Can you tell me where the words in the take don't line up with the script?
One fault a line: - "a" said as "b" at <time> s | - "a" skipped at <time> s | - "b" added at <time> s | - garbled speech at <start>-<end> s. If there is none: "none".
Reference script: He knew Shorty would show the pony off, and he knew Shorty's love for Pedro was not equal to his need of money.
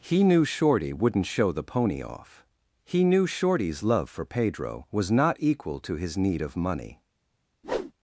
- "would" said as "wouldn't" at 0.9 s
- "and" skipped at 2.5 s